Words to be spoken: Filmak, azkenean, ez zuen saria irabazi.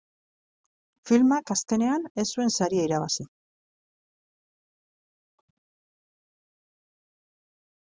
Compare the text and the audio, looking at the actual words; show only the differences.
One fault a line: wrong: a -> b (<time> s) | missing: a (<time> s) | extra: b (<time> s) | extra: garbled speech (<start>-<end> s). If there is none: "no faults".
no faults